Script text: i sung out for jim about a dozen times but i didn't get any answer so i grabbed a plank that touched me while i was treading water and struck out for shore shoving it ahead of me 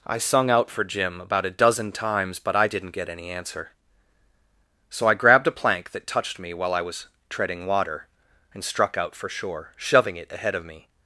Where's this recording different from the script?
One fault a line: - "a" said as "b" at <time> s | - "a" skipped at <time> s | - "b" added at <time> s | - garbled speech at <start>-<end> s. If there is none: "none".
none